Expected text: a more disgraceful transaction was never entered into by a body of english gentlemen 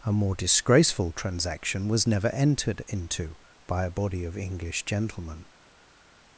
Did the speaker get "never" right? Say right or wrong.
right